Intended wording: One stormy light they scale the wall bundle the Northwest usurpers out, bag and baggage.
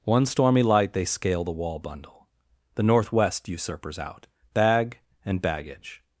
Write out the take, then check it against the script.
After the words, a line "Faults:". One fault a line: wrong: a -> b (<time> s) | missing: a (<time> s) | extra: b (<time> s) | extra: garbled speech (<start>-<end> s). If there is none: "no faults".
One stormy light they scale the wall bundle the Northwest usurpers out, bag and baggage.
Faults:
no faults